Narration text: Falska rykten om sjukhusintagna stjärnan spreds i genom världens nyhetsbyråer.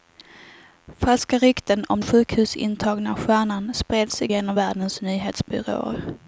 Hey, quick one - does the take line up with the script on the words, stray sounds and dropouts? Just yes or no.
yes